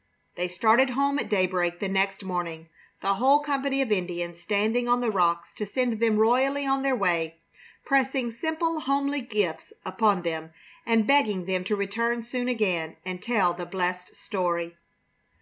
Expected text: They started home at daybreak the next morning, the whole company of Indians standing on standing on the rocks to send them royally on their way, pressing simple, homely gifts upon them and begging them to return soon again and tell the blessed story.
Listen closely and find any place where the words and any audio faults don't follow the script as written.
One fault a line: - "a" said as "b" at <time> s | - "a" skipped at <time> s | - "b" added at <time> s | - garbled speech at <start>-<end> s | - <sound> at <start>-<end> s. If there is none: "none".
- "standing on" skipped at 5.0 s